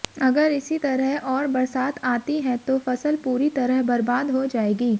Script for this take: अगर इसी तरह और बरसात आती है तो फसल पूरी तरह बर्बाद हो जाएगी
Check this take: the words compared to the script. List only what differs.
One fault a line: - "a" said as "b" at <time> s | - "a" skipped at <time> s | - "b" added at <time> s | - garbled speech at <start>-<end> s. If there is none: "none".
none